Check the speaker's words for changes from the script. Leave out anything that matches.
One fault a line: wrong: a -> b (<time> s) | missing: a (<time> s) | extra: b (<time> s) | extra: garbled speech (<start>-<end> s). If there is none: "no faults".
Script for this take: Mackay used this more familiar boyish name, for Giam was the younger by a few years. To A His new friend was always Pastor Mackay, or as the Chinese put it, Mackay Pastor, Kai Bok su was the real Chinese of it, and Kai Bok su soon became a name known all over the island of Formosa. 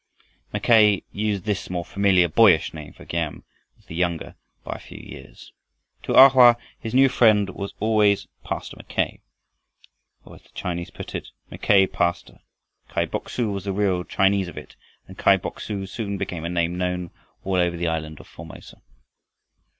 extra: Hoa (6.3 s)